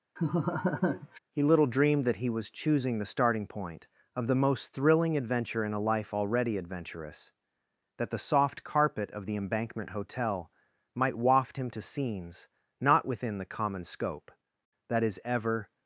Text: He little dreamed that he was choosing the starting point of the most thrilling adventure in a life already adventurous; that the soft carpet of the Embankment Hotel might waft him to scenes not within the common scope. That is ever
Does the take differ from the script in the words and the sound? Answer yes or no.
yes